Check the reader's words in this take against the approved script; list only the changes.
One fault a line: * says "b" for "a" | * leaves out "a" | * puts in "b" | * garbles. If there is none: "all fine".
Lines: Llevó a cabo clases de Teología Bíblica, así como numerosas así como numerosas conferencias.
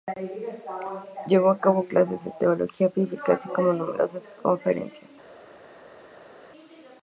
* leaves out "así como numerosas"